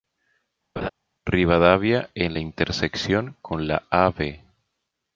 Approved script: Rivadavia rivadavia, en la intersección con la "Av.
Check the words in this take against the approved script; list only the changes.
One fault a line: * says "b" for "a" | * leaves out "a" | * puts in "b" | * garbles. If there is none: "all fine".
* leaves out "rivadavia"